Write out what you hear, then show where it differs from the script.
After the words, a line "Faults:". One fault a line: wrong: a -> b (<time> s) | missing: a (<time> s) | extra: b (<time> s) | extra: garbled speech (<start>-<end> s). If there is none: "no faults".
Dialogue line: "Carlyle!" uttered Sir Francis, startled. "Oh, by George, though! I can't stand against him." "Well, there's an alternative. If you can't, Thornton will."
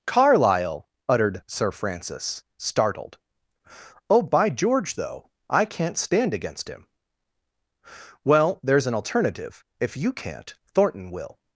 "Carlyle!" uttered Sir Francis, startled. "Oh, by George, though! I can't stand against him." "Well, there's an alternative. If you can't, Thornton will."
Faults:
no faults